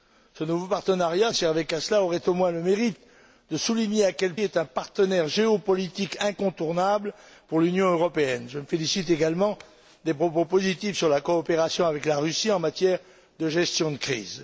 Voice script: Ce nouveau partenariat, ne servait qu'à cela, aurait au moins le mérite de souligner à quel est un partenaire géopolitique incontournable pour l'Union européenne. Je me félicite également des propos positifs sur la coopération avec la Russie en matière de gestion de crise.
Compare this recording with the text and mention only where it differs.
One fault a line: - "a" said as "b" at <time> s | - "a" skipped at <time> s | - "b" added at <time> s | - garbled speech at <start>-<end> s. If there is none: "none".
none